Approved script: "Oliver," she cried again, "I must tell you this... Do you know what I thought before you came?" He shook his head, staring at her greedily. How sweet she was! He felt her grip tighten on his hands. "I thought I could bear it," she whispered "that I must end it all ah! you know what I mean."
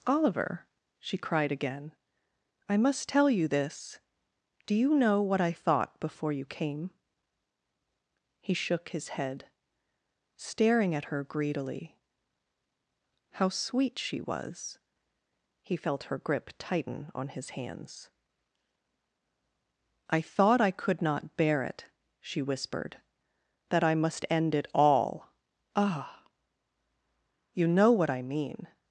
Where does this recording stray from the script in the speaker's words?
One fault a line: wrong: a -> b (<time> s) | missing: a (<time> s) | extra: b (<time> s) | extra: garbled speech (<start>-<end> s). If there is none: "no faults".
extra: not (21.0 s)